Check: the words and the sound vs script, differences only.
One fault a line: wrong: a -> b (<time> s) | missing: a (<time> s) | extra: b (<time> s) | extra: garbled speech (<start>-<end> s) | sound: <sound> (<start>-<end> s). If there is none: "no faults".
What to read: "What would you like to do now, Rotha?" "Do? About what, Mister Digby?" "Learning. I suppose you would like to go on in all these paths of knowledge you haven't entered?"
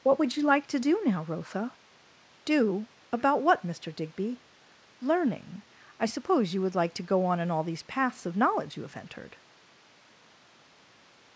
wrong: haven't -> have (8.8 s)